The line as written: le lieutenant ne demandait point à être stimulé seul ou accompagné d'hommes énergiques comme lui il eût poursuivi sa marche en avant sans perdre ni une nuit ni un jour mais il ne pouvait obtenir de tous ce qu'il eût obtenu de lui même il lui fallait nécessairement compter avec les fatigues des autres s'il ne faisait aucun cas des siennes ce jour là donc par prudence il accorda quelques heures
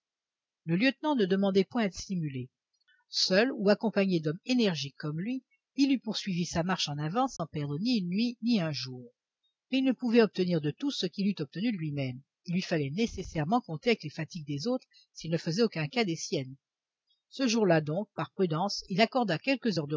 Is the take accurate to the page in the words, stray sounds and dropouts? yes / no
no